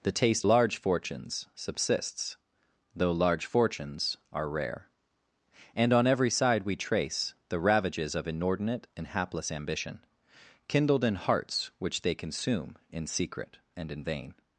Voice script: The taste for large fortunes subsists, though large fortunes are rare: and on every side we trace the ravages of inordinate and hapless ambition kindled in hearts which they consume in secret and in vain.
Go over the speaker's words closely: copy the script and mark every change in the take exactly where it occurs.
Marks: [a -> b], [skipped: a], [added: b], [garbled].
The taste [skipped: for] large fortunes subsists, though large fortunes are rare: and on every side we trace the ravages of inordinate and hapless ambition kindled in hearts which they consume in secret and in vain.